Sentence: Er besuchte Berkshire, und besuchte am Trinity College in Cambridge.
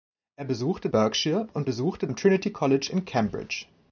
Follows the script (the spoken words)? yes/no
yes